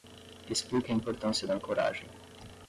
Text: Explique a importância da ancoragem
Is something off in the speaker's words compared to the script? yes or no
no